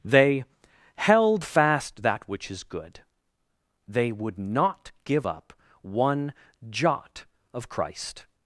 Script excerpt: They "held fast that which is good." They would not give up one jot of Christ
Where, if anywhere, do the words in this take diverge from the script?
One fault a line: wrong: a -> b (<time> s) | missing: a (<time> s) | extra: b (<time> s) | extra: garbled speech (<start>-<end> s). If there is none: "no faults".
no faults